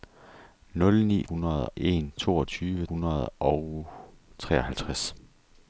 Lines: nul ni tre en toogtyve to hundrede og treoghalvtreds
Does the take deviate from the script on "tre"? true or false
true